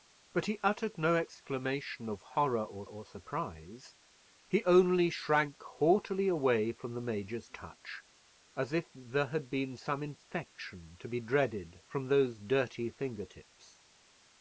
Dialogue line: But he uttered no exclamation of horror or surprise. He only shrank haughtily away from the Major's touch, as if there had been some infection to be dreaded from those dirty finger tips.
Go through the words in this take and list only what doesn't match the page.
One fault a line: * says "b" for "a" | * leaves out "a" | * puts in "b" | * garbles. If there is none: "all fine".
* puts in "or"